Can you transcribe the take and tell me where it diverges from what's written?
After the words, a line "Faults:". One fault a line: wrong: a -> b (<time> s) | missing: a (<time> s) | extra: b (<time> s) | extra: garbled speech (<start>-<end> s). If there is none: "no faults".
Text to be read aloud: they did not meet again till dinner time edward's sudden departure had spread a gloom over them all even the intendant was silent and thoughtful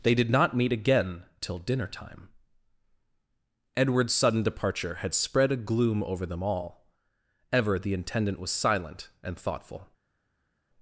they did not meet again till dinner time edward's sudden departure had spread a gloom over them all ever the intendant was silent and thoughtful
Faults:
wrong: even -> ever (7.5 s)